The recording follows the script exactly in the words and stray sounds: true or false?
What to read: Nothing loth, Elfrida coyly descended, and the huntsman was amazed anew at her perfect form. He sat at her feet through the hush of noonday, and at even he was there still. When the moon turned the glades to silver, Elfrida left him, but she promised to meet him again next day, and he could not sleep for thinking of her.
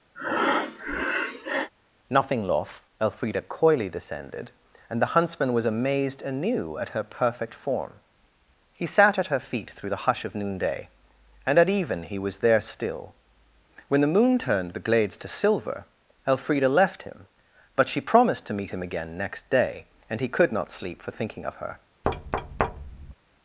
false